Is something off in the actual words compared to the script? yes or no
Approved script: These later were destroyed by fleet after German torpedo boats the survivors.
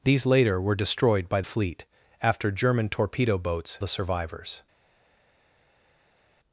no